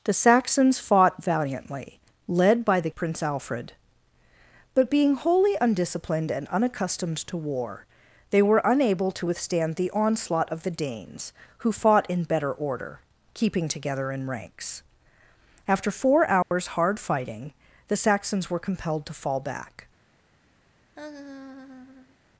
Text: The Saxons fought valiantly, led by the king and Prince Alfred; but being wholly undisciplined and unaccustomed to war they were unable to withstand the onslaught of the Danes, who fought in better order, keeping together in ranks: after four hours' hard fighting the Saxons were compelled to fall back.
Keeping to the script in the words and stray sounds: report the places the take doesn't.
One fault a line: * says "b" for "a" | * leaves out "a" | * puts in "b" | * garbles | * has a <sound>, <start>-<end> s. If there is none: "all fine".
* leaves out "king and"
* has a dropout, 16.4-16.5 s
* has a laugh, 20.9-22.2 s